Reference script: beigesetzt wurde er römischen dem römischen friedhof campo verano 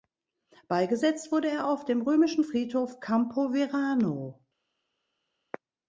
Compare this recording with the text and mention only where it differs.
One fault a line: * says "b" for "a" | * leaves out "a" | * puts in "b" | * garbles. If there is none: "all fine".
* says "auf" for "römischen"